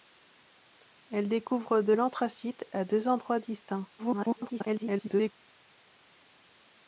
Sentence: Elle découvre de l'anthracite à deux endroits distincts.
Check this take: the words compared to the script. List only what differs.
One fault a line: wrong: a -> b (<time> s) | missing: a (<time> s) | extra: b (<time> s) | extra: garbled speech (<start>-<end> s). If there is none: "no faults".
extra: garbled speech (4.0-5.3 s)